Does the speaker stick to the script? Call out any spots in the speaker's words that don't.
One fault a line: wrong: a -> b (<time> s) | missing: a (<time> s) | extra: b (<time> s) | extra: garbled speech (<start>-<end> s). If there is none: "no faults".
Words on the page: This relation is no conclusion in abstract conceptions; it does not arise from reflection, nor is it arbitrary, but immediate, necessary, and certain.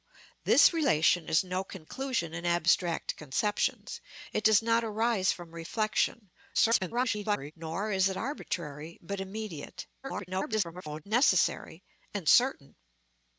extra: garbled speech (6.5-7.5 s)
extra: garbled speech (10.0-11.0 s)